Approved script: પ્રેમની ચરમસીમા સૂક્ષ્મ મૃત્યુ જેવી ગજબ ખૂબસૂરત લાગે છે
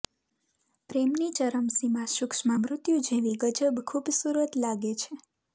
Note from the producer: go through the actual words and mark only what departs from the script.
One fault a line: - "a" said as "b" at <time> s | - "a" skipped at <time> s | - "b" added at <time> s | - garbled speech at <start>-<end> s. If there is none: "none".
none